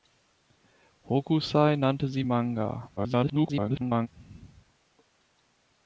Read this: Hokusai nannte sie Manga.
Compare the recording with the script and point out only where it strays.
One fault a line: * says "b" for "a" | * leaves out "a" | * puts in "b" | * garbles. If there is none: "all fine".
* garbles